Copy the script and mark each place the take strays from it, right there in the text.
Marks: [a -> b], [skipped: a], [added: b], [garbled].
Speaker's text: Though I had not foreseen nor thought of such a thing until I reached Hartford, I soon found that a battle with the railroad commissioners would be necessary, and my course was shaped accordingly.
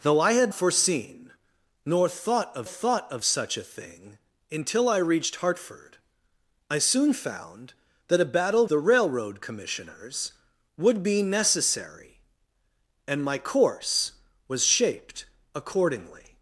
Though I had [skipped: not] foreseen nor thought of [added: thought of] such a thing until I reached Hartford, I soon found that a battle [skipped: with] the railroad commissioners would be necessary, and my course was shaped accordingly.